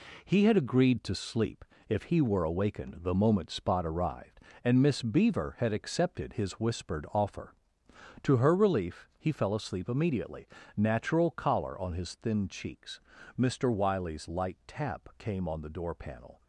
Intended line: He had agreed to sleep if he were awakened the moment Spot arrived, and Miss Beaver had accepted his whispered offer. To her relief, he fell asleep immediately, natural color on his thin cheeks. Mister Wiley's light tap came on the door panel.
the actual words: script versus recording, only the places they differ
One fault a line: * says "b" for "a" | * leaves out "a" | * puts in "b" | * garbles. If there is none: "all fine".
* says "collar" for "color"